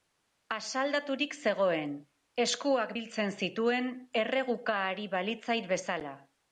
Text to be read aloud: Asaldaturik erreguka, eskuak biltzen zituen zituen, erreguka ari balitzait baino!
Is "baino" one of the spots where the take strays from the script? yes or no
yes